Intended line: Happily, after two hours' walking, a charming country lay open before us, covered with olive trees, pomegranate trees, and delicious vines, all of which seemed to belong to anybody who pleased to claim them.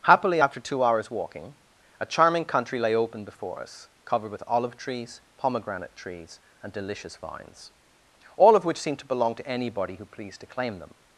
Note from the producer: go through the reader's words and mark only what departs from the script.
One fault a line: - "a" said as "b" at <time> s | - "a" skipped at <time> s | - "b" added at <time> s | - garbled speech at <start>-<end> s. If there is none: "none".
none